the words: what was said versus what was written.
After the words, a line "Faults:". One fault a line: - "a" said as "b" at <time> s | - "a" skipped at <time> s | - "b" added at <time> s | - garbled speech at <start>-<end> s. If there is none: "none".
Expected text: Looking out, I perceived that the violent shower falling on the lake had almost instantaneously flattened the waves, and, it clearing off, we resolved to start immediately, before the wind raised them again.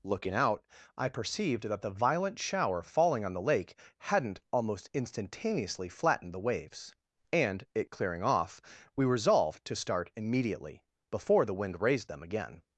Looking out, I perceived that the violent shower falling on the lake hadn't almost instantaneously flattened the waves, and, it clearing off, we resolved to start immediately, before the wind raised them again.
Faults:
- "had" said as "hadn't" at 4.0 s